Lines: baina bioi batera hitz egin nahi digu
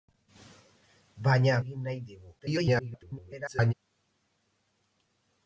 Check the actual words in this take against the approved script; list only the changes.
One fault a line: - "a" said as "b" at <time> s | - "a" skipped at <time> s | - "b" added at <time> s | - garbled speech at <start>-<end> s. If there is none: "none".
- "bioi batera hitz" skipped at 1.6 s
- garbled speech at 2.4-3.7 s